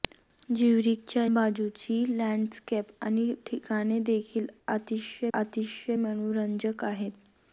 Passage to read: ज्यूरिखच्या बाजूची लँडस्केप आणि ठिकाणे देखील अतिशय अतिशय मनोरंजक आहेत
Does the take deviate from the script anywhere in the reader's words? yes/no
no